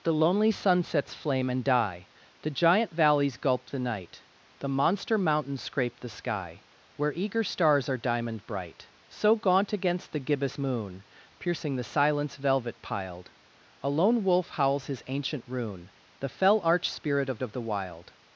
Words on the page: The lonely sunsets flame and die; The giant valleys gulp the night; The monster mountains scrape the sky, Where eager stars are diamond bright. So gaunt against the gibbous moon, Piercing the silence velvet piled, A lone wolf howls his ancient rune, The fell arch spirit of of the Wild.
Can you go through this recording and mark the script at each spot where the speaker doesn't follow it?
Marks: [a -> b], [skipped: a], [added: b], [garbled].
The lonely sunsets flame and die; The giant valleys gulp the night; The monster mountains scrape the sky, Where eager stars are diamond bright. So gaunt against the gibbous moon, Piercing the silence velvet piled, A lone wolf howls his ancient rune, The fell arch spirit of of the Wild.